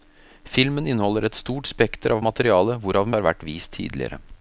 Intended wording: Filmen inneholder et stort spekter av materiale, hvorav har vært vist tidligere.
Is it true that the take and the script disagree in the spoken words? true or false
false